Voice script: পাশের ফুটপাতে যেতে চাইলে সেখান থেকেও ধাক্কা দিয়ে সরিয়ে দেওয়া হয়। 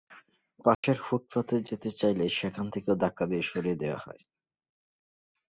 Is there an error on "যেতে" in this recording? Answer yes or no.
no